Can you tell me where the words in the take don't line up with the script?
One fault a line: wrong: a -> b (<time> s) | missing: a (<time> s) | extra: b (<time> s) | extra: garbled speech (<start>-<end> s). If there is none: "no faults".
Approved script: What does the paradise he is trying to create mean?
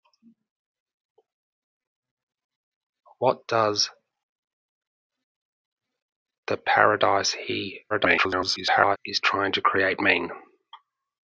extra: garbled speech (7.9-9.0 s)